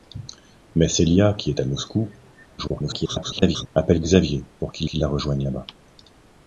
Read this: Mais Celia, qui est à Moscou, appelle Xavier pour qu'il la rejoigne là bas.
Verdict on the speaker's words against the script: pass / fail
fail